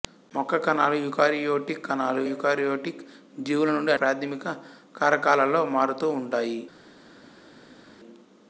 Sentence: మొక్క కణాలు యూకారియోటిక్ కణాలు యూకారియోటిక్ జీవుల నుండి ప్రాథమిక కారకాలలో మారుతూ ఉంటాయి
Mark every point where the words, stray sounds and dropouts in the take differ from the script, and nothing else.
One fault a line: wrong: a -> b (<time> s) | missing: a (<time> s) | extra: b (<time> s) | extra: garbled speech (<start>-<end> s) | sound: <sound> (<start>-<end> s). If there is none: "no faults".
no faults